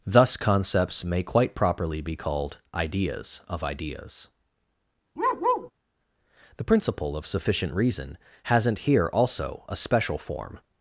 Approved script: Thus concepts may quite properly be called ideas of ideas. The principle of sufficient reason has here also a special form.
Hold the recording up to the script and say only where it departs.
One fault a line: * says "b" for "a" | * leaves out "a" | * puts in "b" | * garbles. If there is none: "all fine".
* says "hasn't" for "has"